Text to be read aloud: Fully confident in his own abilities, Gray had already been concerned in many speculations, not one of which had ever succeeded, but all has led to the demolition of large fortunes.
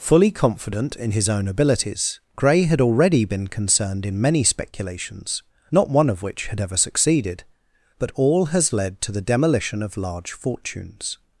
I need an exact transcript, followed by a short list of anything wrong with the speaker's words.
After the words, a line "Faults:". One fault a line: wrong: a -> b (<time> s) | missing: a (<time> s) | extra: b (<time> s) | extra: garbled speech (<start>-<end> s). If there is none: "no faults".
Fully confident in his own abilities, Gray had already been concerned in many speculations, not one of which had ever succeeded, but all has led to the demolition of large fortunes.
Faults:
no faults